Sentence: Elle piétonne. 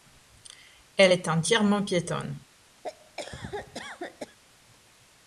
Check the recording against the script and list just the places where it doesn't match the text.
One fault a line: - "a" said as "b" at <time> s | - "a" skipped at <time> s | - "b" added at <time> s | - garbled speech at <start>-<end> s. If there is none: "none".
- "est entièrement" added at 1.1 s